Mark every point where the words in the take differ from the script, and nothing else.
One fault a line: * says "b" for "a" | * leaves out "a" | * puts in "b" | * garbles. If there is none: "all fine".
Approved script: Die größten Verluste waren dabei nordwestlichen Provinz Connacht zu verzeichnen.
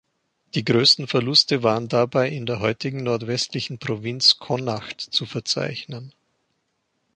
* puts in "in der heutigen"